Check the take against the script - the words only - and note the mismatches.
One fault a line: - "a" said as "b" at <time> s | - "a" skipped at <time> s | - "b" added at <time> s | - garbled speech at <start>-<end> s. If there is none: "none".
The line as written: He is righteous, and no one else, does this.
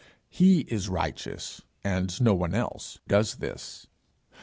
none